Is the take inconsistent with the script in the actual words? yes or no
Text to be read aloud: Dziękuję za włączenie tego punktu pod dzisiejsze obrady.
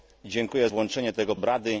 yes